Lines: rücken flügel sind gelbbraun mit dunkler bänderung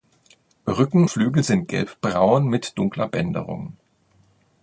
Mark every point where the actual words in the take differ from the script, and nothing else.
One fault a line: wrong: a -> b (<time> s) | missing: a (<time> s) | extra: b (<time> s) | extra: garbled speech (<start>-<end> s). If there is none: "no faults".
no faults